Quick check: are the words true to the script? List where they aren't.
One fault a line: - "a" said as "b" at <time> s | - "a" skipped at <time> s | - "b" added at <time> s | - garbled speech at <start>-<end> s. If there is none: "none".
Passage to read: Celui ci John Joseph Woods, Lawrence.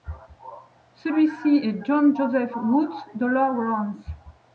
- "est" added at 1.6 s
- "de" added at 3.1 s